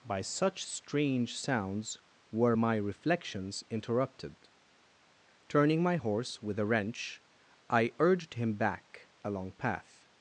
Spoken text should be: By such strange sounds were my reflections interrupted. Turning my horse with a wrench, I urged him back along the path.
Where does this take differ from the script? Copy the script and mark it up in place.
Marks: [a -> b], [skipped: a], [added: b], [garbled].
By such strange sounds were my reflections interrupted. Turning my horse with a wrench, I urged him back along [skipped: the] path.